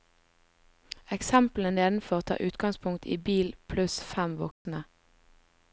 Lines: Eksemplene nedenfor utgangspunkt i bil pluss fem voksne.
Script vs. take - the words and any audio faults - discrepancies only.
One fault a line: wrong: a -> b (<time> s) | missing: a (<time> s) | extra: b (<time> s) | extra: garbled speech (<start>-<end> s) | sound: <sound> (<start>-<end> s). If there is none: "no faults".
extra: tar (2.2 s)
sound: dropout (4.5-4.7 s)